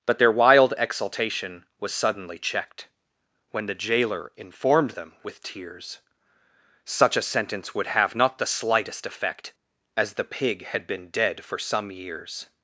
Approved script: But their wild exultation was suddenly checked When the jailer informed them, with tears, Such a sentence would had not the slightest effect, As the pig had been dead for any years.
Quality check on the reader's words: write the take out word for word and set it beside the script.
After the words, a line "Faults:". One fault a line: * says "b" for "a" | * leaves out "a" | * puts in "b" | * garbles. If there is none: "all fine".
But their wild exultation was suddenly checked When the jailer informed them, with tears, Such a sentence would have not the slightest effect, As the pig had been dead for some years.
Faults:
* says "have" for "had"
* says "some" for "any"